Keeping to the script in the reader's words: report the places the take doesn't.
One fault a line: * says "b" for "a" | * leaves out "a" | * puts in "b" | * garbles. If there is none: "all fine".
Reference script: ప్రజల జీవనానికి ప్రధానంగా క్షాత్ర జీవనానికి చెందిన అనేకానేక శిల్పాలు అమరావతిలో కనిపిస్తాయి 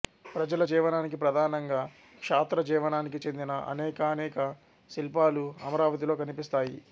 all fine